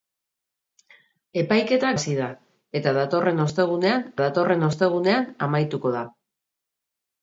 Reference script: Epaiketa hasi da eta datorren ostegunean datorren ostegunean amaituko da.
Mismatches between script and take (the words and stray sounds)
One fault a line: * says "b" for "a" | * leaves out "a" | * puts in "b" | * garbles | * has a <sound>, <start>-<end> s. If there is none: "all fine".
all fine